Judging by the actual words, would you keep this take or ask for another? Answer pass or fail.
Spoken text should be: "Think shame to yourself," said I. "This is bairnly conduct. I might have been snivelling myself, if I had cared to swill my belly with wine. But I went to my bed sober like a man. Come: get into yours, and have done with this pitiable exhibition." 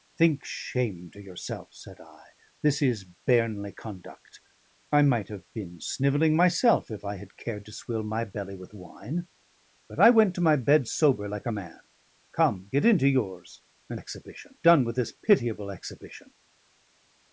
fail